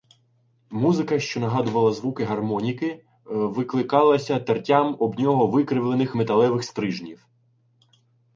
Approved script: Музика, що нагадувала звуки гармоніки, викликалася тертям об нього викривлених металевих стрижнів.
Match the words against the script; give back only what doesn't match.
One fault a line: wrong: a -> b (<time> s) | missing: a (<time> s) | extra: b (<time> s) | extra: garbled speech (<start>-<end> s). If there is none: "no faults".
no faults